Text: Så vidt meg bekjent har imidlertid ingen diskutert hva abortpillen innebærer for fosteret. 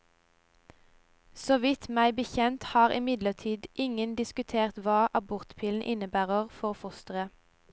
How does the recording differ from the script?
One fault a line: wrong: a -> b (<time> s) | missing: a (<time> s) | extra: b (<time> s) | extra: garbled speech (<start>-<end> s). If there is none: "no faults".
no faults